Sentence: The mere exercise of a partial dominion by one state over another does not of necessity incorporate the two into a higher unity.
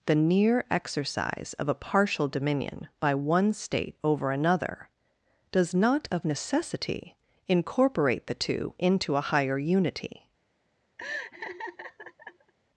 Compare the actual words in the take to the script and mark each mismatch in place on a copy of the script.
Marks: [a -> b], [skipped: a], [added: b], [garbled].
The [mere -> near] exercise of a partial dominion by one state over another does not of necessity incorporate the two into a higher unity.